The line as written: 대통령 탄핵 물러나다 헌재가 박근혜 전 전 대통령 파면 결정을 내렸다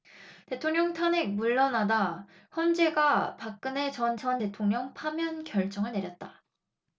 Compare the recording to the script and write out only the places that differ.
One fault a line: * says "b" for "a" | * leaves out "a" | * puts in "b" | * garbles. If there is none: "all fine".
all fine